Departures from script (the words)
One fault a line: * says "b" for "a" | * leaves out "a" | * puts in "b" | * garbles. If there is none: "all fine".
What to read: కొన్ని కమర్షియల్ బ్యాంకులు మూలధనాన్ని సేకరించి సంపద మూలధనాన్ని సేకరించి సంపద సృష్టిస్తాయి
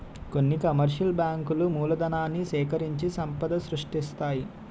* leaves out "మూలధనాన్ని సేకరించి సంపద"